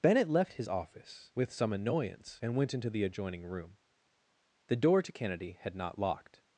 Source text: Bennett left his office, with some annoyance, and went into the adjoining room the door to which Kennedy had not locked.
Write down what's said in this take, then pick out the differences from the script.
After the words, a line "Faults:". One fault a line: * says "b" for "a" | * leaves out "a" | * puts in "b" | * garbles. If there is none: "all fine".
Bennett left his office, with some annoyance, and went into the adjoining room the door to Kennedy had not locked.
Faults:
* leaves out "which"